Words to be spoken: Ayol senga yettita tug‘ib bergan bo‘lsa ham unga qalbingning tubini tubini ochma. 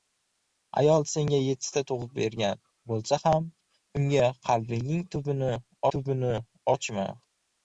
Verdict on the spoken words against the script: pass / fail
pass